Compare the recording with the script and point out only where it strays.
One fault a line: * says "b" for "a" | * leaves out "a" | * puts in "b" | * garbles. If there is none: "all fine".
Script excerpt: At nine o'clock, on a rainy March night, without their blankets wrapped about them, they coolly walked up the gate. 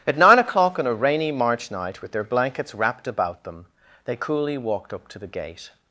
* says "with" for "without"
* puts in "to"